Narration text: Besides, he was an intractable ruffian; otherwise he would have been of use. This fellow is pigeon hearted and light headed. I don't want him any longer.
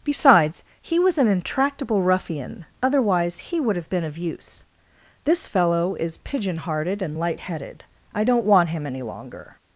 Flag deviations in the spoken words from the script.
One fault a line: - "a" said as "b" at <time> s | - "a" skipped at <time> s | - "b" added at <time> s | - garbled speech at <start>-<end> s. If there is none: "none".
none